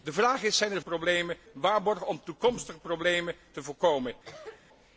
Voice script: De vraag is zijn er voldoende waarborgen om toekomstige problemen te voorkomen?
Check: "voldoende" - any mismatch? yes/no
yes